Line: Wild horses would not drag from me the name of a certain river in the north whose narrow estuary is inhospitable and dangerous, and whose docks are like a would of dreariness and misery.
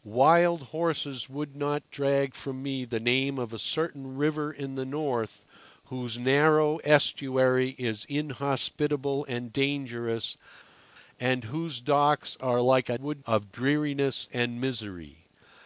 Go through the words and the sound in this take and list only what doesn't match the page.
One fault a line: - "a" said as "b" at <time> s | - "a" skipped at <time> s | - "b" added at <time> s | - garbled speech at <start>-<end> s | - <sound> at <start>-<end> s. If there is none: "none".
none